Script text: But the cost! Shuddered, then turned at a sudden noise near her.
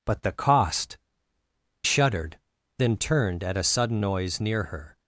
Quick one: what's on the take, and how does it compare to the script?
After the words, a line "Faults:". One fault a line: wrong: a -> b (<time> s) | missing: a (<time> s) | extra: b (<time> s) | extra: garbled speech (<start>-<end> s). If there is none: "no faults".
But the cost! Shuddered, then turned at a sudden noise near her.
Faults:
no faults